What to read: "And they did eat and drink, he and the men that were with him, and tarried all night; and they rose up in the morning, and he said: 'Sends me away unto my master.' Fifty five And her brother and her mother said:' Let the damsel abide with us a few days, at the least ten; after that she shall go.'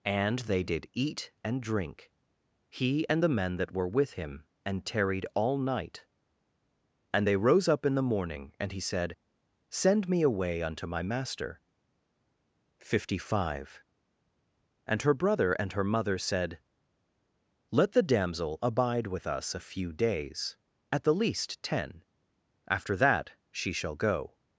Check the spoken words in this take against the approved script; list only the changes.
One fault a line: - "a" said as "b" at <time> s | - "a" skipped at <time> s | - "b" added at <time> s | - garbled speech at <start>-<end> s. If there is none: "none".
- "Sends" said as "Send" at 9.7 s